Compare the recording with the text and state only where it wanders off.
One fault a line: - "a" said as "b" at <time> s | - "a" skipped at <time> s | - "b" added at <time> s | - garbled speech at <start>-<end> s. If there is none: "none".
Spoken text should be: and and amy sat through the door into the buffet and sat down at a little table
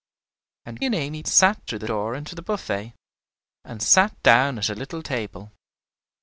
none